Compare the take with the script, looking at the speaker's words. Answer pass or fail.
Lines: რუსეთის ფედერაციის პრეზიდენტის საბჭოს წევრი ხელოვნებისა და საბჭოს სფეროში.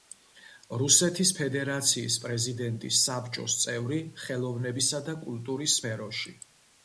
fail